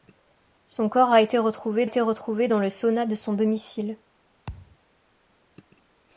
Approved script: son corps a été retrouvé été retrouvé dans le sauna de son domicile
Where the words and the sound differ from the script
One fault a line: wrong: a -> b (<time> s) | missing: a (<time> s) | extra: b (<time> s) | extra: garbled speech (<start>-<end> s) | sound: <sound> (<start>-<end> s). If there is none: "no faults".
sound: thud (4.5-4.8 s)